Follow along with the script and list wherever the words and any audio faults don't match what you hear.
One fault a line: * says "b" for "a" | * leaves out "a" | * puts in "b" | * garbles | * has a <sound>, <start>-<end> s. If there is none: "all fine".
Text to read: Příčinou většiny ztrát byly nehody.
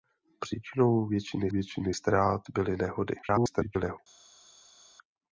* puts in "většiny"
* garbles